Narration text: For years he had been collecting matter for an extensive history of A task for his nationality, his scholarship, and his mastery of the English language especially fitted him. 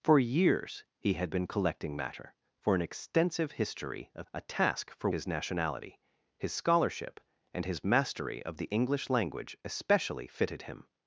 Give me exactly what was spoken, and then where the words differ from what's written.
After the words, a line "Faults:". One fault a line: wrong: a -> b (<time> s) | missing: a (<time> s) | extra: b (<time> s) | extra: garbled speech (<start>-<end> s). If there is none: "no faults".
For years he had been collecting matter for an extensive history of A task for his nationality, his scholarship, and his mastery of the English language especially fitted him.
Faults:
no faults